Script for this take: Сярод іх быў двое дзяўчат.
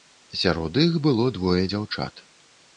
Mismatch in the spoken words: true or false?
true